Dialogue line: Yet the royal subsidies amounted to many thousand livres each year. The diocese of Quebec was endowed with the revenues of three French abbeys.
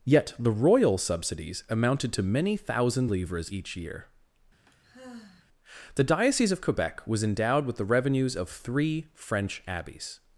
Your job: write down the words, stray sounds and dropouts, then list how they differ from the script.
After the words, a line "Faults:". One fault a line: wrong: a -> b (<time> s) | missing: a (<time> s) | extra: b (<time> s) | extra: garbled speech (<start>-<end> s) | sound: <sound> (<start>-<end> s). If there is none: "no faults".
Yet the royal subsidies amounted to many thousand livres each year. The diocese of Quebec was endowed with the revenues of three French abbeys.
Faults:
sound: sigh (4.7-5.5 s)